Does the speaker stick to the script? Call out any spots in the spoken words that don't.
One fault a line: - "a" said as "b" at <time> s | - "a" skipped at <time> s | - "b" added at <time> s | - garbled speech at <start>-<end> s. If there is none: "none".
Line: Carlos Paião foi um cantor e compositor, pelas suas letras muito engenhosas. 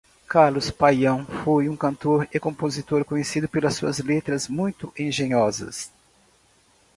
- "conhecido" added at 3.0 s